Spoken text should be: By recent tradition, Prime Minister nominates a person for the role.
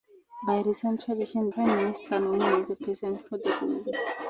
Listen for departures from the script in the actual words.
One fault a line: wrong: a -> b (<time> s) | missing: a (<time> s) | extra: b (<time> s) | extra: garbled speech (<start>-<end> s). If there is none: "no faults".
no faults